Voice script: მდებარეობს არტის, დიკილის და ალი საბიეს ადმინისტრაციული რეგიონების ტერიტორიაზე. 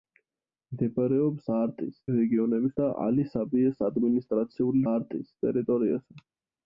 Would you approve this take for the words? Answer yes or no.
no